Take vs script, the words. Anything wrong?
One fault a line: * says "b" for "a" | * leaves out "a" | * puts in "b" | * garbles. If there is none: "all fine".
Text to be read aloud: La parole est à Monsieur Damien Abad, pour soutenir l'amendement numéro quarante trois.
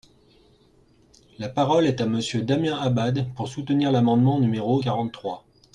all fine